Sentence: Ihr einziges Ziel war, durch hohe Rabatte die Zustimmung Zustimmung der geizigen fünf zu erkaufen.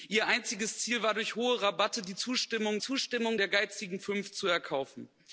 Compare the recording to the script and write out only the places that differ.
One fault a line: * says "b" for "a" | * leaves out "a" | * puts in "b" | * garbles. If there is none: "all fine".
all fine